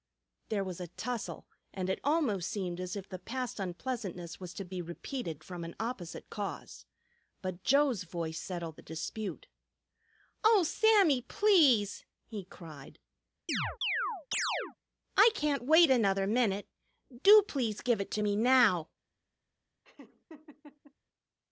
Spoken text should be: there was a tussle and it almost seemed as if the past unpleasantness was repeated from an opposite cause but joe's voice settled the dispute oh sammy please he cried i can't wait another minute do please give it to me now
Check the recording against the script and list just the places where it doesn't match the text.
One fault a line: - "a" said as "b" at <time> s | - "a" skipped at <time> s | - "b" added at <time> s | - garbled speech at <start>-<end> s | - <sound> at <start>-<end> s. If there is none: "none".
- "to be" added at 4.5 s
- chirp at 13.5-14.8 s
- laugh at 19.8-20.9 s